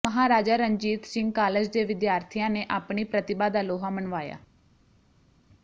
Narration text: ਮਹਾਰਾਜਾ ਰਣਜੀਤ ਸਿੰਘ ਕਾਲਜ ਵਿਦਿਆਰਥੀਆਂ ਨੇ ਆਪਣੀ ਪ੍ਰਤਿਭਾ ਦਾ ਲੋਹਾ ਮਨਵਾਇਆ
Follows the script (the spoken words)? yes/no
no